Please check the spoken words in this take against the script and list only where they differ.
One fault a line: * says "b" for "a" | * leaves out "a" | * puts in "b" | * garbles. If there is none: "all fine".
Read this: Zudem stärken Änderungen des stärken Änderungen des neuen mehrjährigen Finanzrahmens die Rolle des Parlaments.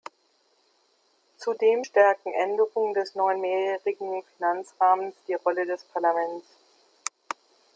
* leaves out "stärken Änderungen des"